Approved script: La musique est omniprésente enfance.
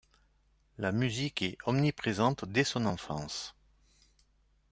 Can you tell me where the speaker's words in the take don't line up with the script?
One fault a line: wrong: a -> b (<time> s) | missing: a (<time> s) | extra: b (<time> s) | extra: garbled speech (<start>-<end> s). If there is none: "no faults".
extra: dès son (2.5 s)